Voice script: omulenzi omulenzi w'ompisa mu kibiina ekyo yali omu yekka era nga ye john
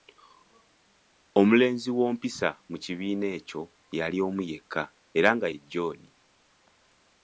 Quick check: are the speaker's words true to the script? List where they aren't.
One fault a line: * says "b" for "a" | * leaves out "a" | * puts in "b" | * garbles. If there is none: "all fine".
* leaves out "omulenzi"